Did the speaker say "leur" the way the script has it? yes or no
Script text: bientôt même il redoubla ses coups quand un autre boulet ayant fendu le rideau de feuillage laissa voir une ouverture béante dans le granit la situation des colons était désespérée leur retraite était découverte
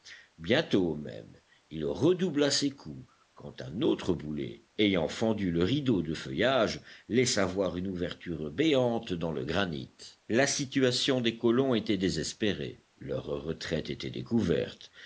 yes